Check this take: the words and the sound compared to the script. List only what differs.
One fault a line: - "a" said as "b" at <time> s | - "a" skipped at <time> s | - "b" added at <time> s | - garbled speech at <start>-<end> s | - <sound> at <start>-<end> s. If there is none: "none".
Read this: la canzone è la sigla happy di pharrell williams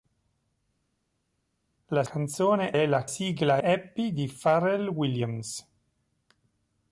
none